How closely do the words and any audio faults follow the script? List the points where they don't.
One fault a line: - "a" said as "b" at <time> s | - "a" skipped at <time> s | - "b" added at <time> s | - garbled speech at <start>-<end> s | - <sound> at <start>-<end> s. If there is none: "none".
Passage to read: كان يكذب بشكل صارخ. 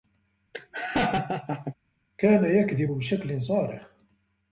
- laugh at 0.5-1.7 s